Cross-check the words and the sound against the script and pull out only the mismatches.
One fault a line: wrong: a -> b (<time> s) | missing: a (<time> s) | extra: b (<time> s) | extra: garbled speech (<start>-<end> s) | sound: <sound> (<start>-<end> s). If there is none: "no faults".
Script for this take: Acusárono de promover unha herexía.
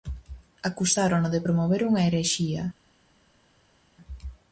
no faults